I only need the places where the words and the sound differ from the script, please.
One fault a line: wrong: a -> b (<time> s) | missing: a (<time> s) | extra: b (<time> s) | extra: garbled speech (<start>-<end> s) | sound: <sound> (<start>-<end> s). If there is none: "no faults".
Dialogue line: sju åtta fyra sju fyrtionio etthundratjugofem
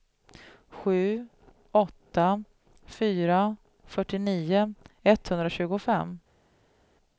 missing: sju (3.5 s)